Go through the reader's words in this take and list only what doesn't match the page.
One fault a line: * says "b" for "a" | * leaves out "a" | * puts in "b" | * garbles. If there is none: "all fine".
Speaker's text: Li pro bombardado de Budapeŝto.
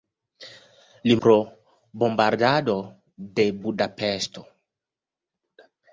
all fine